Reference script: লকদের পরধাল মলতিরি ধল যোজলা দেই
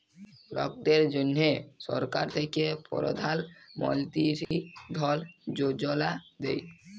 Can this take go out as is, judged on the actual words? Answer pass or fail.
fail